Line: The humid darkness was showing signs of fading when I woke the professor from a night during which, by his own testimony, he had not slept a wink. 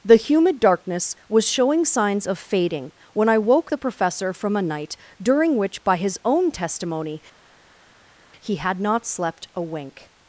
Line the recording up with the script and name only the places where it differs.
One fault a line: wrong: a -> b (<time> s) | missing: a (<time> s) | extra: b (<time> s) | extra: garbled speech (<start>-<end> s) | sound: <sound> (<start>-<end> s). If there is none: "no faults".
no faults